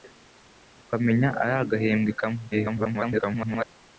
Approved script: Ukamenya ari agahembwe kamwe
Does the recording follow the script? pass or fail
fail